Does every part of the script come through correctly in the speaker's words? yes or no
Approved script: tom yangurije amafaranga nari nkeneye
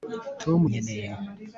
no